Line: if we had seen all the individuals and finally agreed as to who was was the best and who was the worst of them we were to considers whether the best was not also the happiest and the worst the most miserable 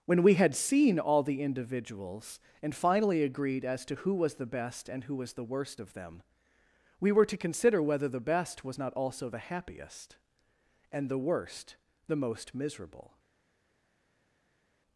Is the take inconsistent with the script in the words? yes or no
yes